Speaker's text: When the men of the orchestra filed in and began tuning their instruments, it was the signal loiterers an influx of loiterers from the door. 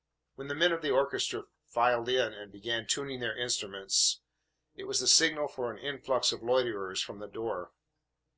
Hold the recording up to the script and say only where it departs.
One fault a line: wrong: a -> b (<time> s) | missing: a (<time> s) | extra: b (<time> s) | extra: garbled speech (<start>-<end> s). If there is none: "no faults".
wrong: loiterers -> for (5.5 s)